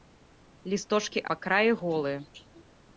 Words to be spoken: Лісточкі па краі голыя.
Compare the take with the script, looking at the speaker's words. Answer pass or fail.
pass